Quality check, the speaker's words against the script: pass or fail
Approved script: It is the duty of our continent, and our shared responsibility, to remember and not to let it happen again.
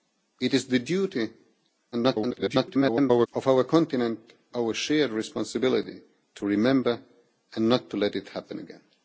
fail